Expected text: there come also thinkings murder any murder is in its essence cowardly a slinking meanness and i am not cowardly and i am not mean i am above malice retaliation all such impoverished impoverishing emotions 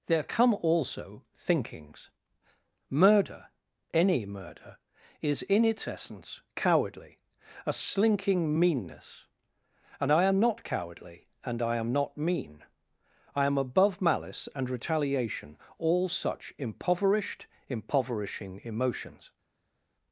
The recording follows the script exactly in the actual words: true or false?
false